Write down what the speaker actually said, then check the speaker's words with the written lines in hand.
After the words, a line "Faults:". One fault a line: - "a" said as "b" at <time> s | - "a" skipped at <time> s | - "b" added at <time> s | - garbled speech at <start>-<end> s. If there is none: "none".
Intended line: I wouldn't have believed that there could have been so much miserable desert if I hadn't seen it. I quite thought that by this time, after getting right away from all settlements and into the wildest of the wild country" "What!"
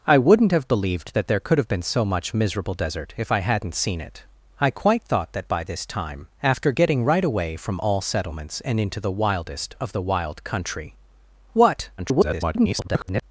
I wouldn't have believed that there could have been so much miserable desert if I hadn't seen it. I quite thought that by this time, after getting right away from all settlements and into the wildest of the wild country" "What!" [garbled]
Faults:
- garbled speech at 12.0-13.2 s